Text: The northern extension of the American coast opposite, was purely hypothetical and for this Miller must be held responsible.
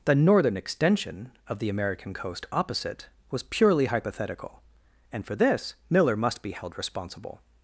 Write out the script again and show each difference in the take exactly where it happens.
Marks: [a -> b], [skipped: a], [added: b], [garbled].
The northern extension of the American coast opposite, was purely hypothetical and for this Miller must be held responsible.